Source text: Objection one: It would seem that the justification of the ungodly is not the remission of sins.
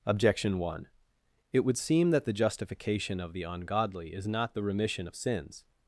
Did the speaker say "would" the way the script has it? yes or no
yes